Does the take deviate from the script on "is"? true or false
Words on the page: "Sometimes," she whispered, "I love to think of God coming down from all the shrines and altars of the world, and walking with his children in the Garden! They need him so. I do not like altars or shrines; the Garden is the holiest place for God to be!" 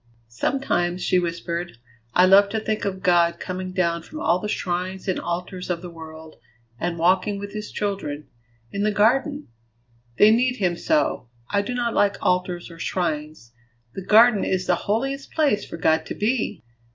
false